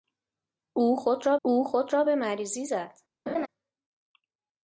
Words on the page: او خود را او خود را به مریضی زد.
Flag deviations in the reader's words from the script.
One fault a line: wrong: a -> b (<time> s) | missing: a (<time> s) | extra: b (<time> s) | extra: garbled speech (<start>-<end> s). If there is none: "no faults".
no faults